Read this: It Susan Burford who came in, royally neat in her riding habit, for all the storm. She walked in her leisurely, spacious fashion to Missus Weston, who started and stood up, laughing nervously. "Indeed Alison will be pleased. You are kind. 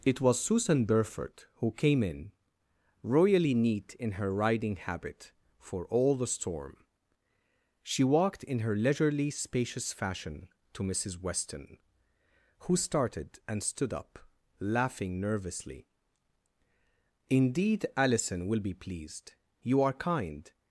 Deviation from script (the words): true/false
true